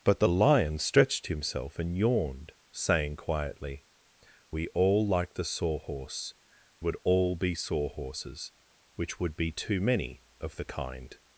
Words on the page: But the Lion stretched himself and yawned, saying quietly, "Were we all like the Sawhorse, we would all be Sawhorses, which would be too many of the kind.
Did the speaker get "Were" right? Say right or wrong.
wrong